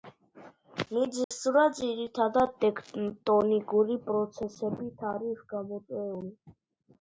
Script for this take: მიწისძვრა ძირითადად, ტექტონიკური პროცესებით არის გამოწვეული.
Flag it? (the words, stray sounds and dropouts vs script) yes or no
yes